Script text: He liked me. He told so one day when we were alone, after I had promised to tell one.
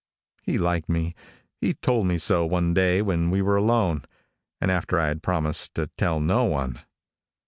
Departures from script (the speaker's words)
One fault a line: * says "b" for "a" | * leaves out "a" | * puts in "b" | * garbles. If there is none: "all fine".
* puts in "me"
* puts in "and"
* puts in "no"